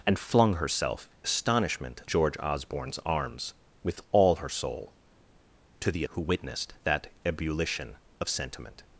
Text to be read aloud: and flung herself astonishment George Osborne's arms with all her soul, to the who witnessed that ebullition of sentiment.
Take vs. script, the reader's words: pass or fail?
pass